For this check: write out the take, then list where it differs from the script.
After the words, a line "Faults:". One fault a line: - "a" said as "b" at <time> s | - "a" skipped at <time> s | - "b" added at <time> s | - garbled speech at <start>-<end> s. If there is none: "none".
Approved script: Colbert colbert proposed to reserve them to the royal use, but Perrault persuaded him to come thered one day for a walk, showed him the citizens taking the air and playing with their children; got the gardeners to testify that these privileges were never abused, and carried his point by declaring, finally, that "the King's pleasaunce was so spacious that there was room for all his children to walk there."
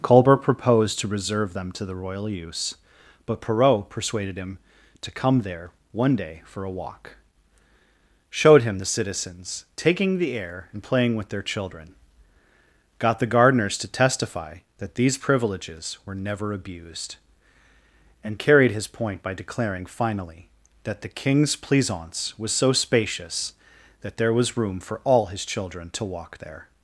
Colbert proposed to reserve them to the royal use, but Perrault persuaded him to come there one day for a walk, showed him the citizens taking the air and playing with their children; got the gardeners to testify that these privileges were never abused, and carried his point by declaring, finally, that "the King's pleasaunce was so spacious that there was room for all his children to walk there."
Faults:
- "colbert" skipped at 0.4 s
- "thered" said as "there" at 5.4 s